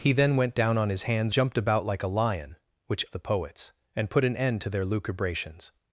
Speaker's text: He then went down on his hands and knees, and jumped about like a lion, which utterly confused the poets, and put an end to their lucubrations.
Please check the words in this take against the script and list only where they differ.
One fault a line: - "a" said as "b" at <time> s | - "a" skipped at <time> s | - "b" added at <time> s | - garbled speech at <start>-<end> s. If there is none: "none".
- "and knees and" skipped at 1.4 s
- "utterly confused" skipped at 3.0 s